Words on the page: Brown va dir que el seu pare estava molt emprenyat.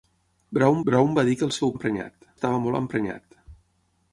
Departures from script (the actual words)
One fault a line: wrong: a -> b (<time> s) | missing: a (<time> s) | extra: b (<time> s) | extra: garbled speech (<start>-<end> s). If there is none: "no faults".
extra: brown (0.9 s)
wrong: pare -> emprenyat (1.7 s)